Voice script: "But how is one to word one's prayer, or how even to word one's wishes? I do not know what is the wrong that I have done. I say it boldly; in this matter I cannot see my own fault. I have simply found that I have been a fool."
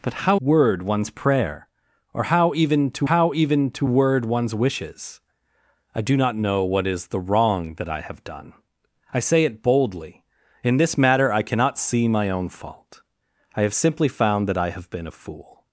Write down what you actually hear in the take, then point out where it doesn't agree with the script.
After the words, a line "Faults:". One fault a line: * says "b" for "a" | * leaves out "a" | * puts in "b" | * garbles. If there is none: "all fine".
"But how word one's prayer, or how even to how even to word one's wishes? I do not know what is the wrong that I have done. I say it boldly; in this matter I cannot see my own fault. I have simply found that I have been a fool."
Faults:
* leaves out "is one to"
* puts in "how even to"